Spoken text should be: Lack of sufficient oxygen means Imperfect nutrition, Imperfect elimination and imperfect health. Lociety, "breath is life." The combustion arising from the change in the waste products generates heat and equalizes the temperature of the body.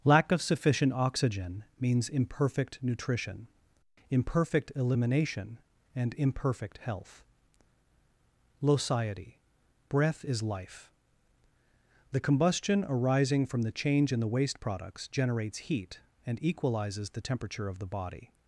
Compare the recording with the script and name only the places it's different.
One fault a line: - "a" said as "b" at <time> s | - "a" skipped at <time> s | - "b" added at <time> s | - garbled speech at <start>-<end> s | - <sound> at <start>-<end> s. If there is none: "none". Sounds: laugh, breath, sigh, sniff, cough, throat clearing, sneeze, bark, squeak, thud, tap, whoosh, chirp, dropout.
none